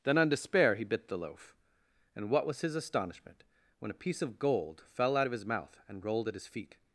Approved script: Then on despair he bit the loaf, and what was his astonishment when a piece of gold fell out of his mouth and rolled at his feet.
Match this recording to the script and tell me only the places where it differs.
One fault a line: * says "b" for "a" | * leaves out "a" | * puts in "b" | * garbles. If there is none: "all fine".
all fine